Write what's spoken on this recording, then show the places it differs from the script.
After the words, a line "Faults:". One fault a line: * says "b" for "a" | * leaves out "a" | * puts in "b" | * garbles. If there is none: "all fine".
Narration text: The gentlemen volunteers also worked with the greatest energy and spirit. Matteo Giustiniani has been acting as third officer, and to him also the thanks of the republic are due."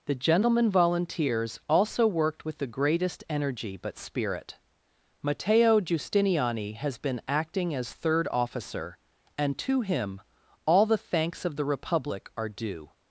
The gentlemen volunteers also worked with the greatest energy but spirit. Matteo Giustiniani has been acting as third officer, and to him all the thanks of the republic are due."
Faults:
* says "but" for "and"
* says "all" for "also"